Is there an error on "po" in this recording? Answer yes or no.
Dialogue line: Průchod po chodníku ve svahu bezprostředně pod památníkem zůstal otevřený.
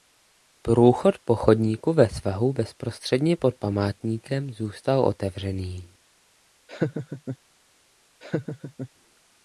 no